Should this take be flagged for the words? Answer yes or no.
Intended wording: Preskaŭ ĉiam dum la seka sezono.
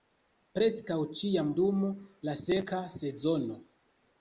no